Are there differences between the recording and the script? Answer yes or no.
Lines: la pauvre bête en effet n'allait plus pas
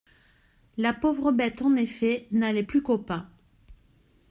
yes